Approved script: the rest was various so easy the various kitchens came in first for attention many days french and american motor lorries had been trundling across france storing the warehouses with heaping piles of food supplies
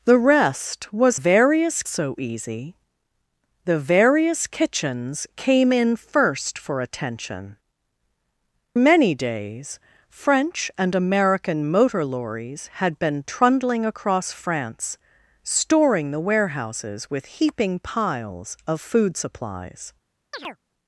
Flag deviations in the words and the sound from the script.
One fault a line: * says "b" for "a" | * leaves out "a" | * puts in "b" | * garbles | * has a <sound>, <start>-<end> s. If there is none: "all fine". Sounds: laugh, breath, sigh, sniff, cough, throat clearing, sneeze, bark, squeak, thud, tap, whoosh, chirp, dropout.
* has a chirp, 20.3-20.6 s